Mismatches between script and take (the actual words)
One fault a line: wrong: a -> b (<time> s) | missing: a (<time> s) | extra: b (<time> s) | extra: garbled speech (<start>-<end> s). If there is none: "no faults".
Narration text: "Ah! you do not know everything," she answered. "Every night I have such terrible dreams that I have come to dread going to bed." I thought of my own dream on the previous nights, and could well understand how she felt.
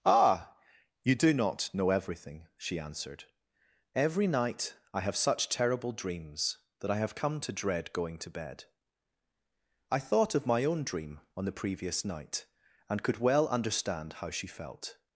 wrong: nights -> night (12.0 s)